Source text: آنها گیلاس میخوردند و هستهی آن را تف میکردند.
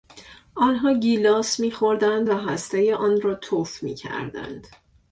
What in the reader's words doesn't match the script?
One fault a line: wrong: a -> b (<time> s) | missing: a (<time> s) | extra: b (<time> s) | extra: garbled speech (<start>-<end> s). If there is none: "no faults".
no faults